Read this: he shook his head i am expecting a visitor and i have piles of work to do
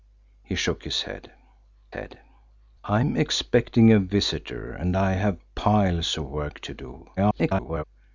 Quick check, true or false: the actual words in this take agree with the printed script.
false